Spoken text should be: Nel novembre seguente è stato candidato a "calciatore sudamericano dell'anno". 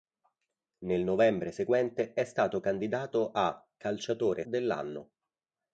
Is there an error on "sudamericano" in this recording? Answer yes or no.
yes